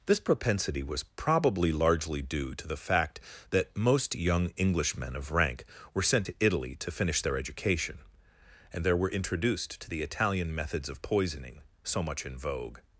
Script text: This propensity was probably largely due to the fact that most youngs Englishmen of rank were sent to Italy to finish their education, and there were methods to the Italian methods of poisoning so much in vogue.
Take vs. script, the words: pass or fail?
fail